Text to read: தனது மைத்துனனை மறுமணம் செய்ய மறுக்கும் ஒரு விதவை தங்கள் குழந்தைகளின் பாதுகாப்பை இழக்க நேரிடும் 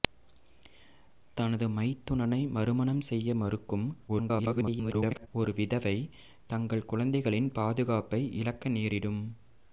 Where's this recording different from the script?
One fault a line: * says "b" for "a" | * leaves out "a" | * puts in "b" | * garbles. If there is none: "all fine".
* garbles